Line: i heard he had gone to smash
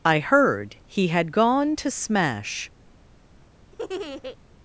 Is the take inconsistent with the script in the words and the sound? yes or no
yes